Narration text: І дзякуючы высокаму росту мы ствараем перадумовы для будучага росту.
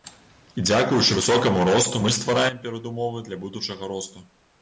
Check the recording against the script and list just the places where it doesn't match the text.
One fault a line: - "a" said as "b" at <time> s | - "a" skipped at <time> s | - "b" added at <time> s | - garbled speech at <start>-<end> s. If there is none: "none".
none